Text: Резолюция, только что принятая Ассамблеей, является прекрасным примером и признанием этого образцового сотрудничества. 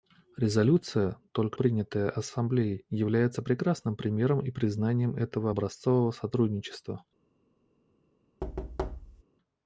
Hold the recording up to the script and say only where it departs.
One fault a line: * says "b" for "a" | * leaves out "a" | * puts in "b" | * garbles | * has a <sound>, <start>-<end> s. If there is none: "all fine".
* leaves out "что"
* has a thud, 8.4-9.2 s